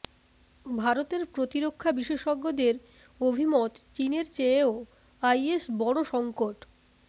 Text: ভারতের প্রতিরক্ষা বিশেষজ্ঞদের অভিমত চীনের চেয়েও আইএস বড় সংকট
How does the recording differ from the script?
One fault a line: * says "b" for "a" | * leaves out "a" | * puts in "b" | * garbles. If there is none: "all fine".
all fine